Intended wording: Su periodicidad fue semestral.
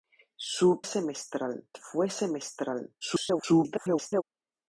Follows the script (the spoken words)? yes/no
no